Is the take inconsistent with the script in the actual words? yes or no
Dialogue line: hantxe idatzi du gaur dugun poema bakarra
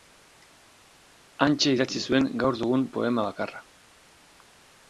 yes